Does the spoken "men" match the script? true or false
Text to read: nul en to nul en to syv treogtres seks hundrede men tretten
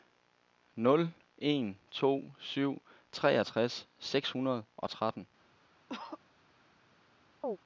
false